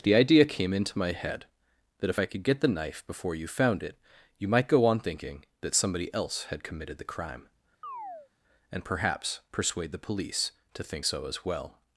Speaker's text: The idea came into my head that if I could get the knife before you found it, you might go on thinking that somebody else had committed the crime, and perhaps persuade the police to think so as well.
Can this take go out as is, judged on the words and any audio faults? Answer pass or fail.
fail